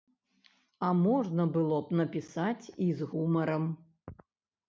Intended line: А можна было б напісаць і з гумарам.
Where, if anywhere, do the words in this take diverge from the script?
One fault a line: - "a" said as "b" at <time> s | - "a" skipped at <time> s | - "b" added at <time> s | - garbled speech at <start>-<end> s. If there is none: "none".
none